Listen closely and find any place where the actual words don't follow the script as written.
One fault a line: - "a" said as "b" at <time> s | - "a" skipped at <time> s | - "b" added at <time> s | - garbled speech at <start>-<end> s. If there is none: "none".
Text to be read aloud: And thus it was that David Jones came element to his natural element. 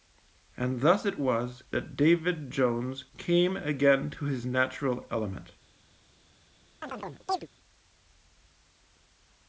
- "element" said as "again" at 3.5 s